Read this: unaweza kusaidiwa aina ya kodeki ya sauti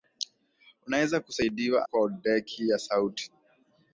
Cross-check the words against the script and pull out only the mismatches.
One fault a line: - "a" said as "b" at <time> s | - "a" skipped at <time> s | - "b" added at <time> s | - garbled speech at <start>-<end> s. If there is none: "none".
- "aina ya" skipped at 1.9 s